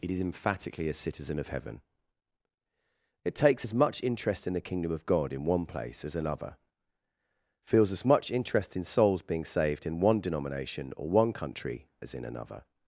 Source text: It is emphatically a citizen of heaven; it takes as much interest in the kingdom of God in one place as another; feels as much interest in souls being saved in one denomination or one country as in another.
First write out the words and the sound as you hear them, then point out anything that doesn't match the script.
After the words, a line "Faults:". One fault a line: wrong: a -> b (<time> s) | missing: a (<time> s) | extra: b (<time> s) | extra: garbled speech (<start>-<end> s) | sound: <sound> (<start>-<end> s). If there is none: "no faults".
It is emphatically a citizen of heaven; it takes as much interest in the kingdom of God in one place as another; feels as much interest in souls being saved in one denomination or one country as in another.
Faults:
no faults